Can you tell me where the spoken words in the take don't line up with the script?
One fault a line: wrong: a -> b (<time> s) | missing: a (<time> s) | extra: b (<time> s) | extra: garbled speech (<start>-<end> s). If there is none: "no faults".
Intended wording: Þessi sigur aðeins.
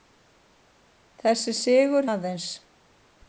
no faults